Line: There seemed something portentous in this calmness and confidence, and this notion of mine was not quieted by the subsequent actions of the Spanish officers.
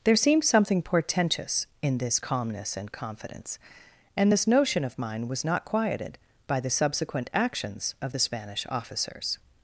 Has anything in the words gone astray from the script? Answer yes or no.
no